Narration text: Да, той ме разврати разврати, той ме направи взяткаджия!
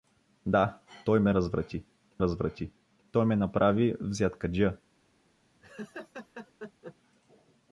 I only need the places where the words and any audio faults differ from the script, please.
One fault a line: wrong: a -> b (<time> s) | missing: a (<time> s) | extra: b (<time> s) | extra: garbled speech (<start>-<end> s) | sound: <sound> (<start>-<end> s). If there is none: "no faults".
sound: laugh (5.6-7.0 s)